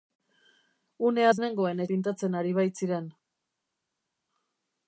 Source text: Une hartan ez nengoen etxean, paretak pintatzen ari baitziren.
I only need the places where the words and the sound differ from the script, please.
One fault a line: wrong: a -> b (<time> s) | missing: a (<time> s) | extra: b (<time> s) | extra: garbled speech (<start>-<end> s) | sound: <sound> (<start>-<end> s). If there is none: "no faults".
missing: hartan (1.3 s)
missing: etxean paretak (1.8 s)